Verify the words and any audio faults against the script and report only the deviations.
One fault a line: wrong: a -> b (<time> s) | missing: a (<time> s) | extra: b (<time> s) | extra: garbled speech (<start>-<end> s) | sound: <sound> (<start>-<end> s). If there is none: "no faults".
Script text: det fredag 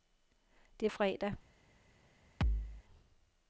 sound: thud (2.4-2.8 s)